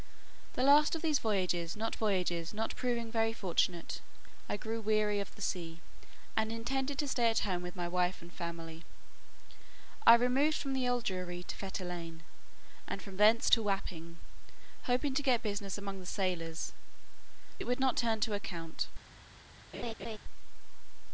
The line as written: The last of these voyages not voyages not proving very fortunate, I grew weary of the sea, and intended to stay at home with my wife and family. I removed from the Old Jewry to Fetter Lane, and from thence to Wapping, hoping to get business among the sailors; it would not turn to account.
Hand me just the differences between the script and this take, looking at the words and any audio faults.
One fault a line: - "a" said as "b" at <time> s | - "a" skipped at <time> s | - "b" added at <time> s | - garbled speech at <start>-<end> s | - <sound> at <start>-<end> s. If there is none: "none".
- laugh at 19.7-20.2 s